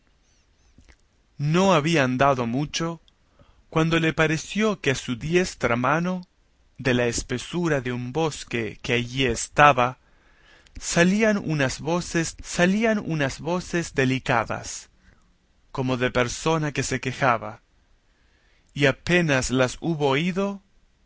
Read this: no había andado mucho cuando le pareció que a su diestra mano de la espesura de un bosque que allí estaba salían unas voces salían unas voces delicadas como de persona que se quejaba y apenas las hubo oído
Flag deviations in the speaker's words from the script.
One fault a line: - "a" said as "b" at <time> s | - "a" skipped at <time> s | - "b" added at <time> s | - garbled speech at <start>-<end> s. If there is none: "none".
none